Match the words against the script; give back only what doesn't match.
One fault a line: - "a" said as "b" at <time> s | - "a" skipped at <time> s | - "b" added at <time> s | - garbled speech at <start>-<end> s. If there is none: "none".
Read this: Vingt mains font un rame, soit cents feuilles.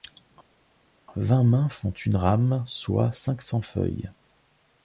- "un" said as "une" at 1.9 s
- "cinq" added at 3.1 s